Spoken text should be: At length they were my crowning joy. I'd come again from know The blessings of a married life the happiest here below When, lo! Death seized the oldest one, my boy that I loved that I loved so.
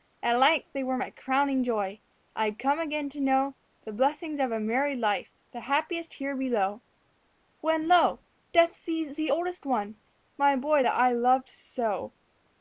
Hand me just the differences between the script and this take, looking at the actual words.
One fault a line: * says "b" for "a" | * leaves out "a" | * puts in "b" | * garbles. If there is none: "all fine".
* says "to" for "from"
* leaves out "that I loved"